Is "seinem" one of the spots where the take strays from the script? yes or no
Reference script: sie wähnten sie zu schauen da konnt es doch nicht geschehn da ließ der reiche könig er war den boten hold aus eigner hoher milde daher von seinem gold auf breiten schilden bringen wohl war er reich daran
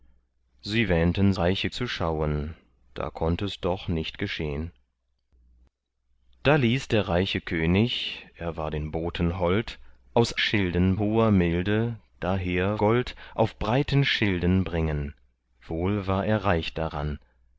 yes